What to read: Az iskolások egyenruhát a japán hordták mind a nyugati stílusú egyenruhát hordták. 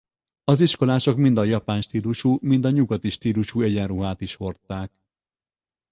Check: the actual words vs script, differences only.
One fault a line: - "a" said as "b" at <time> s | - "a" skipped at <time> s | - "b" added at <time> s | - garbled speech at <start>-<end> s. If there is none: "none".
- "egyenruhát" said as "mind" at 1.2 s
- "hordták" said as "stílusú" at 1.8 s
- "is" added at 4.2 s